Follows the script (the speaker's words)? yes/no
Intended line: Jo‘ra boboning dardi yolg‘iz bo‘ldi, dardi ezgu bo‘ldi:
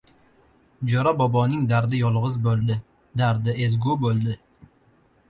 yes